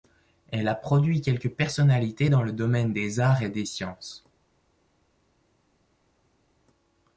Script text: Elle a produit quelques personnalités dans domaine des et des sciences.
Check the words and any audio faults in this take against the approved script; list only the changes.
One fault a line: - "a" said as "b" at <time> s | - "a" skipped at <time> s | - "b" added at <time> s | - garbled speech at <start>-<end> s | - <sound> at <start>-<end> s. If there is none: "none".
- "le" added at 2.4 s
- "arts" added at 3.2 s